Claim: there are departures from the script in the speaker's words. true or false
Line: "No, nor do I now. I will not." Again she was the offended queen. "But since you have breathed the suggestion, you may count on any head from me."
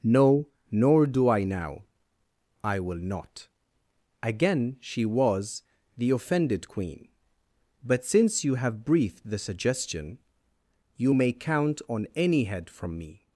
false